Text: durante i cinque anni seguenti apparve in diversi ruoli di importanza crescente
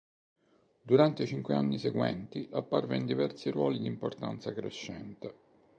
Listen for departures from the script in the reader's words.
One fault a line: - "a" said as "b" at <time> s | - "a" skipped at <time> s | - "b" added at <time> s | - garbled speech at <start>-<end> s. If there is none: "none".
none